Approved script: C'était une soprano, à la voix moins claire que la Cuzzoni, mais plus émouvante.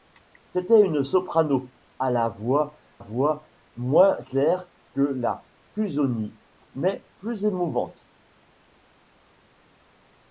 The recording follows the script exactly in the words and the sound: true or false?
false